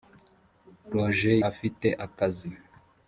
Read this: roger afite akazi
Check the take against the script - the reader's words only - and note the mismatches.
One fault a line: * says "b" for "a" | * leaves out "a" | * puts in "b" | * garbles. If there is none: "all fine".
all fine